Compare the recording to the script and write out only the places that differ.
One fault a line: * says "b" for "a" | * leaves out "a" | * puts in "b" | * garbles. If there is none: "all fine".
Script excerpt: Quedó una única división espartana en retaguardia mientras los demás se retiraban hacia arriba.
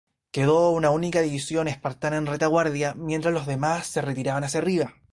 all fine